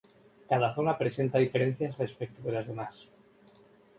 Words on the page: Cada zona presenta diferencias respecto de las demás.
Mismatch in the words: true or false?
false